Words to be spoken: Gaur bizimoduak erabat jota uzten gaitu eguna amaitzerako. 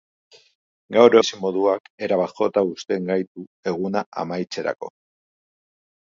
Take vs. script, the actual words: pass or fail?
pass